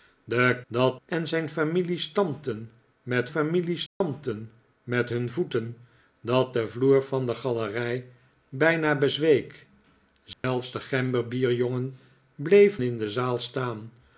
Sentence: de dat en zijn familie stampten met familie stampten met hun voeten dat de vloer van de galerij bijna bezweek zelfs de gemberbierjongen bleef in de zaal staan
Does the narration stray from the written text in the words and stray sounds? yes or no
yes